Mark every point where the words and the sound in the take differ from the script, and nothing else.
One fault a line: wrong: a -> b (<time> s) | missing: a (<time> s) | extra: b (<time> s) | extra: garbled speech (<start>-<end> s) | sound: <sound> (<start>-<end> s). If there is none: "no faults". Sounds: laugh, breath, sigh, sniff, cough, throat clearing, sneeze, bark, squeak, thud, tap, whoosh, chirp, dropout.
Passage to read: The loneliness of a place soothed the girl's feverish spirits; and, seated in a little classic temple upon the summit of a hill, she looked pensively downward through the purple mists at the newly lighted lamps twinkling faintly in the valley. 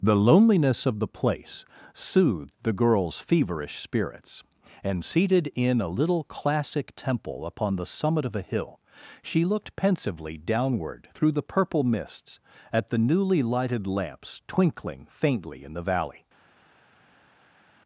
wrong: a -> the (1.0 s)